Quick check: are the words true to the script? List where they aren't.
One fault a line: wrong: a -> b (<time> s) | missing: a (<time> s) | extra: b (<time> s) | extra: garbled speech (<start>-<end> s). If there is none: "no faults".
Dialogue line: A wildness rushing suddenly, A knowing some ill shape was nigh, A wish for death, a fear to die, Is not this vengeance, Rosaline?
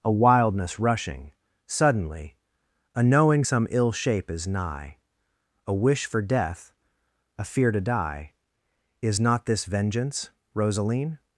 wrong: was -> is (4.3 s)